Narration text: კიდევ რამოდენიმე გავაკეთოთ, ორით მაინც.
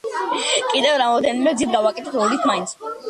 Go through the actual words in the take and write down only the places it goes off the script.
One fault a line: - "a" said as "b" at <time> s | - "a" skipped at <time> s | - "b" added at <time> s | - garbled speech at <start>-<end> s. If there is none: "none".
- "გზით" added at 1.6 s